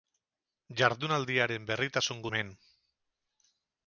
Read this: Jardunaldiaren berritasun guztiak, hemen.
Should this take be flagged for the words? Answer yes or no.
yes